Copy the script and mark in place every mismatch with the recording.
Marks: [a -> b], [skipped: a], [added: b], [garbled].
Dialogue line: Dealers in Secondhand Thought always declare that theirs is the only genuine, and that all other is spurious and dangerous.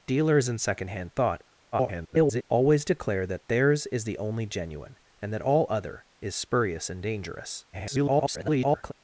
Dealers in Secondhand Thought [garbled] always declare that theirs is the only genuine, and that all other is spurious and dangerous. [garbled]